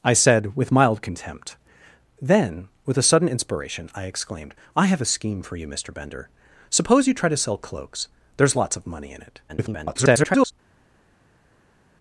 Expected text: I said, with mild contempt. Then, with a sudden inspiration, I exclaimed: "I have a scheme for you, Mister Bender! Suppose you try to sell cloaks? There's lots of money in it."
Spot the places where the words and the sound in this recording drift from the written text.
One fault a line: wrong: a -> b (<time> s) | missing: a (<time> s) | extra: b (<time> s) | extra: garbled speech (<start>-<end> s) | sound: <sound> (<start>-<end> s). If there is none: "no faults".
extra: garbled speech (9.5-10.5 s)